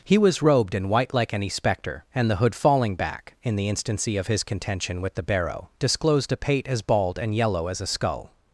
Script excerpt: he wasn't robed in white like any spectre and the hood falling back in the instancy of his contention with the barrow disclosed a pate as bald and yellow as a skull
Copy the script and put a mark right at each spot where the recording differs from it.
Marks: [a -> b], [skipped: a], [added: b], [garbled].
he [wasn't -> was] robed in white like any spectre and the hood falling back in the instancy of his contention with the barrow disclosed a pate as bald and yellow as a skull